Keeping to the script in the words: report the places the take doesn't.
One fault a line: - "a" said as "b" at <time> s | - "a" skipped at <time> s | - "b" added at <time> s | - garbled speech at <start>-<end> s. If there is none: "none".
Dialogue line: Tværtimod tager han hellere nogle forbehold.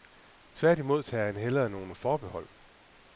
none